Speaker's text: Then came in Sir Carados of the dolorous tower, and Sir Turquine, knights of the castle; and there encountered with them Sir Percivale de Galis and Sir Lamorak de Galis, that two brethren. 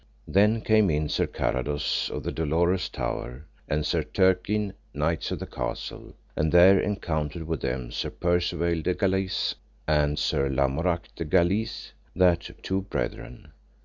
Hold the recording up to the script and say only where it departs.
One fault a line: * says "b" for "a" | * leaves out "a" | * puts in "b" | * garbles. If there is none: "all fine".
all fine